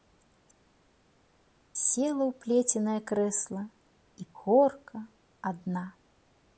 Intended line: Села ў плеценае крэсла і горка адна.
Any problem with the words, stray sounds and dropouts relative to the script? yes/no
no